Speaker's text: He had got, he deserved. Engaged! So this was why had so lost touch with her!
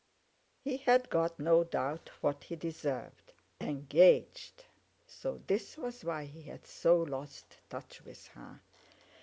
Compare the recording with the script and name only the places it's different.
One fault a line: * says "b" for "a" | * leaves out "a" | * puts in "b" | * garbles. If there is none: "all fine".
* puts in "no doubt what"
* puts in "he"